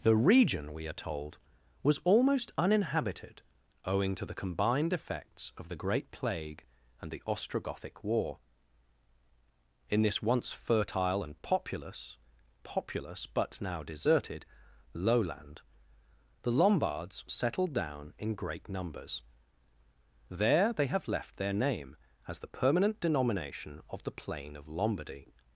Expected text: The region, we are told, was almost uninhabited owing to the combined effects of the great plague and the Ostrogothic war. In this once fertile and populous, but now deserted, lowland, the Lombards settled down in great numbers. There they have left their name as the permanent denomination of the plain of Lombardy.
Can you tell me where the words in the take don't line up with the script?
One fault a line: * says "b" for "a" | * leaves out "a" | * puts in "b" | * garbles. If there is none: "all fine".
* puts in "populous"